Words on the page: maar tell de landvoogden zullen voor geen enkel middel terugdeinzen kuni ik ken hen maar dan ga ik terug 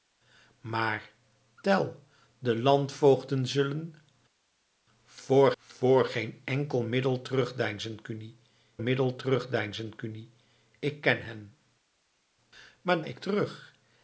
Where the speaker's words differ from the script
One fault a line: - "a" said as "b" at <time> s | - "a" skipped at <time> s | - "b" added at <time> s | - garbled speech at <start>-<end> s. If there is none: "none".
- "voor" added at 5.6 s
- "middel terugdeinzen kuni" added at 8.8 s
- "dan ga" skipped at 13.0 s